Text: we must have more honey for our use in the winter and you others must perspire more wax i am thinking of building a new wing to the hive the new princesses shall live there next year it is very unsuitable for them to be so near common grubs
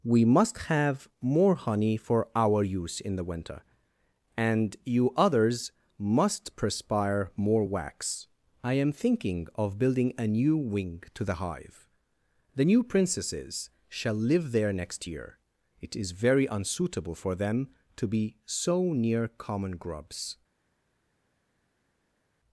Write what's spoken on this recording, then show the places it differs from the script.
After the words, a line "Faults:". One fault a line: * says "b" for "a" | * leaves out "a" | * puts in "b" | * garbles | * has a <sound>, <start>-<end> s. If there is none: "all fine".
we must have more honey for our use in the winter and you others must perspire more wax i am thinking of building a new wing to the hive the new princesses shall live there next year it is very unsuitable for them to be so near common grubs
Faults:
all fine